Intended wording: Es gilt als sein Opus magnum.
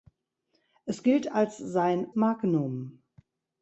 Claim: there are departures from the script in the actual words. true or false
true